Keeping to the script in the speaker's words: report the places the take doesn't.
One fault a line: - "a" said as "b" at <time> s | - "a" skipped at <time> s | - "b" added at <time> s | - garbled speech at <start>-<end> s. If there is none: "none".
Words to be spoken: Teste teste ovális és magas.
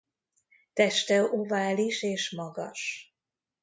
- "teste" skipped at 1.2 s